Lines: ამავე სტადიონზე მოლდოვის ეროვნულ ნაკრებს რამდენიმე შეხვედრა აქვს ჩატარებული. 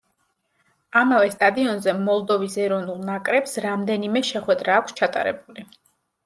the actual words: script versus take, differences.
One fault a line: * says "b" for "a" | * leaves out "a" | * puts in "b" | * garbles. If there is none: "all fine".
all fine